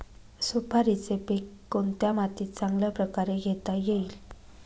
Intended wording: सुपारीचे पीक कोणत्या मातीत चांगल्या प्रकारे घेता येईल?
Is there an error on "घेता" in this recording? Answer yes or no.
no